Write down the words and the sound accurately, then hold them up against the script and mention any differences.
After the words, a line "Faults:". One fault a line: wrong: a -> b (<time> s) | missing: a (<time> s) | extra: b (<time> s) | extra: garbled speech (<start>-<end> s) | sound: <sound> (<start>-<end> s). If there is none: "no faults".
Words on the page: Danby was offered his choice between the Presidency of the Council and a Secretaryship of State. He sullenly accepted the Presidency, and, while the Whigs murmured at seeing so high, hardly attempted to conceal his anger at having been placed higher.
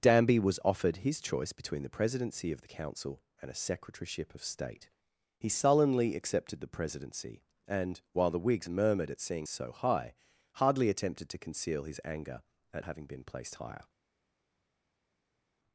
Danby was offered his choice between the Presidency of the Council and a Secretaryship of State. He sullenly accepted the Presidency, and, while the Whigs murmured at seeing so high, hardly attempted to conceal his anger at having been placed higher.
Faults:
no faults